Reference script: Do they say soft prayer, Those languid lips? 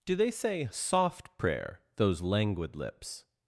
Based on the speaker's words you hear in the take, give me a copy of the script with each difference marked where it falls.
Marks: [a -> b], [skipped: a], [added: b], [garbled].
Do they say soft prayer, Those languid lips?